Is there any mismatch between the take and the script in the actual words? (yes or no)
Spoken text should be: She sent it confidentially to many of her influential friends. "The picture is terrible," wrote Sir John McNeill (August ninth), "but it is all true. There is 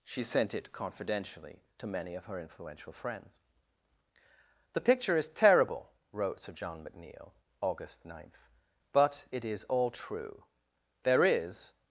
no